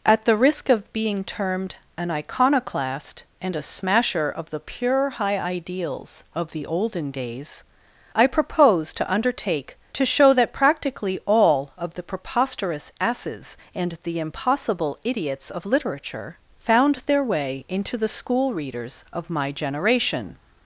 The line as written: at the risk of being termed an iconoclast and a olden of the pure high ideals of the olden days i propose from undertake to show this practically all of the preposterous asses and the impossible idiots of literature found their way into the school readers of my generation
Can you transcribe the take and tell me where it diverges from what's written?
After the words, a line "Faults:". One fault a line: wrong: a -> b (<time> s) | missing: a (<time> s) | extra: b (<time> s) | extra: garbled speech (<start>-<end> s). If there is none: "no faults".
at the risk of being termed an iconoclast and a smasher of the pure high ideals of the olden days i propose to undertake to show that practically all of the preposterous asses and the impossible idiots of literature found their way into the school readers of my generation
Faults:
wrong: olden -> smasher (3.6 s)
wrong: from -> to (8.9 s)
wrong: this -> that (10.3 s)